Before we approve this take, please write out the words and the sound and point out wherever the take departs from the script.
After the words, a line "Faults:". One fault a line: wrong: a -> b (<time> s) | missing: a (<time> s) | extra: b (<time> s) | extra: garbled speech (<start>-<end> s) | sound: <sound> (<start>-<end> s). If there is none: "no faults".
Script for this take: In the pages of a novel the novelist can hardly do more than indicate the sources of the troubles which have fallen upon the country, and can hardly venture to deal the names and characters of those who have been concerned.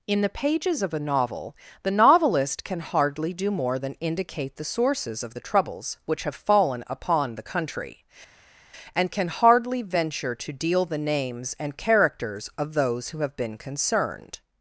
In the pages of a novel the novelist can hardly do more than indicate the sources of the troubles which have fallen upon the country, and can hardly venture to deal the names and characters of those who have been concerned.
Faults:
no faults